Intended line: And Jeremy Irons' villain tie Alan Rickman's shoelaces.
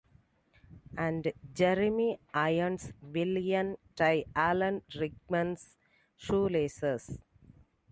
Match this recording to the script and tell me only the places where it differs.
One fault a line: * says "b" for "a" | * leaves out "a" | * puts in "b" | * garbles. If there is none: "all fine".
all fine